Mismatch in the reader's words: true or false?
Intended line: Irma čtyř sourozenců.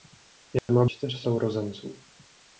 false